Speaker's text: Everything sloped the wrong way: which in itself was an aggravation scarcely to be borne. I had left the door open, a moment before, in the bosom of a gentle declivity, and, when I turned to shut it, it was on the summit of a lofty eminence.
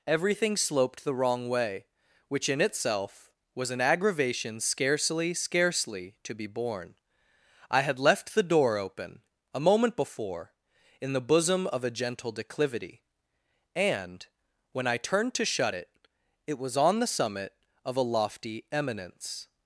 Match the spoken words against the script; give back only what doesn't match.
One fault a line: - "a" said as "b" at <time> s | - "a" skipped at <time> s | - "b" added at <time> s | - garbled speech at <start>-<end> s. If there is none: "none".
- "scarcely" added at 5.3 s